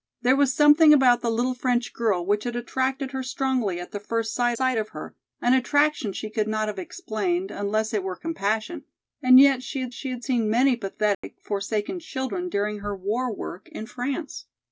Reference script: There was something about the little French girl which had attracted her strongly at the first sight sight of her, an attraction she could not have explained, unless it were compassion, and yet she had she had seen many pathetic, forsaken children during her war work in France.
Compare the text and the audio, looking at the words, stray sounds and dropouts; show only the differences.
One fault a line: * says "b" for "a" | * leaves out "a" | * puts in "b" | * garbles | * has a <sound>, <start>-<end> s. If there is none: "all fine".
* has a dropout, 11.1-11.2 s